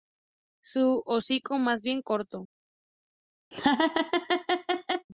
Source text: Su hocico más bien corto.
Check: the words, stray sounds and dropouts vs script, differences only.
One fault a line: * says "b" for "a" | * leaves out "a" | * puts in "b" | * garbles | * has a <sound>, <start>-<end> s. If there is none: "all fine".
* has a laugh, 3.5-5.1 s